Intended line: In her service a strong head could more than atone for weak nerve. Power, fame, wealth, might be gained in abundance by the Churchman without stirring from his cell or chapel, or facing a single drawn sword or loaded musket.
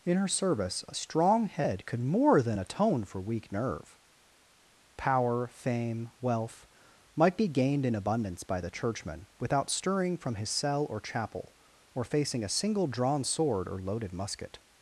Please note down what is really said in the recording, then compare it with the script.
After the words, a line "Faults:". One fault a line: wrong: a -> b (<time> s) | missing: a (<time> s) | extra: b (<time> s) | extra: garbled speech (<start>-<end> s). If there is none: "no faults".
In her service a strong head could more than atone for weak nerve. Power, fame, wealth, might be gained in abundance by the Churchman without stirring from his cell or chapel, or facing a single drawn sword or loaded musket.
Faults:
no faults